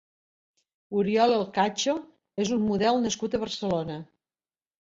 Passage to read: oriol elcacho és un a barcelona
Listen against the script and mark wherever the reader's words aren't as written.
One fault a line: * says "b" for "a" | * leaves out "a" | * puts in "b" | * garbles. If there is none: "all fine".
* puts in "model nascut"